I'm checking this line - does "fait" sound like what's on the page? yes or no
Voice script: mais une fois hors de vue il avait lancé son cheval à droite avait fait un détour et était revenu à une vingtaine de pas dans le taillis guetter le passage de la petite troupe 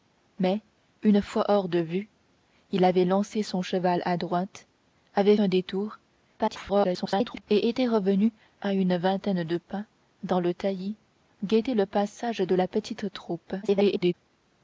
no